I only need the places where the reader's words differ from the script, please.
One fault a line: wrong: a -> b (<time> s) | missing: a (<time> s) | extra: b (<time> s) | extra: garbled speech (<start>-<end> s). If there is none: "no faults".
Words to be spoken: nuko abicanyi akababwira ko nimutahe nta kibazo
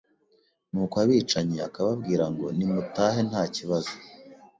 wrong: ko -> ngo (2.3 s)